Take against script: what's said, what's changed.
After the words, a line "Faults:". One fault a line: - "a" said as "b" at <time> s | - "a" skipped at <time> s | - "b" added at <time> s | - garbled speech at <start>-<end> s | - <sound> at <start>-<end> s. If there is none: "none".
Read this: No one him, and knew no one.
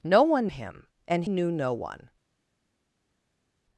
No one him, and knew no one.
Faults:
none